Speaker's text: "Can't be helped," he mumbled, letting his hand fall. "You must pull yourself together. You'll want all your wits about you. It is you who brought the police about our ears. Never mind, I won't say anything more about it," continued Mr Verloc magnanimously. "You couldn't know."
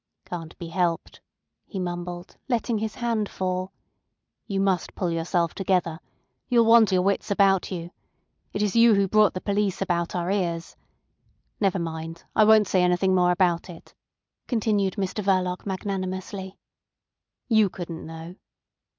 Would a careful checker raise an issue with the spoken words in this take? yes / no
yes